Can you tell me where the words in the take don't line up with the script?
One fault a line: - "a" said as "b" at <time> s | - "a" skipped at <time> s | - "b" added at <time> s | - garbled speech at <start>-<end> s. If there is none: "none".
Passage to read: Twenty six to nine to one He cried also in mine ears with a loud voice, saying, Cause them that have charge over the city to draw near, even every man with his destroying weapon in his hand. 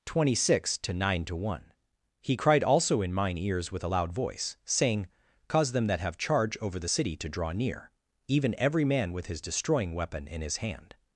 none